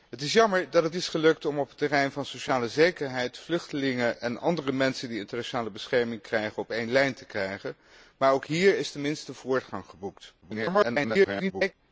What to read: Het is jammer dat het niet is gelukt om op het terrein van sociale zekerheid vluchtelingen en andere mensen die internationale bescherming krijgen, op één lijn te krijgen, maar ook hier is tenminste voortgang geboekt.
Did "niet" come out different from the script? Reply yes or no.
yes